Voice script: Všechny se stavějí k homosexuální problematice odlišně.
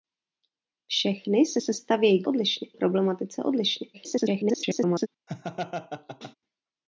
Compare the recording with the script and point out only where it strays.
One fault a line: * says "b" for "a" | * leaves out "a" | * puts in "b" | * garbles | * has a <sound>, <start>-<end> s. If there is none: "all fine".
* puts in "se"
* says "odlišně" for "homosexuální"
* garbles
* has a laugh, 5.3-6.4 s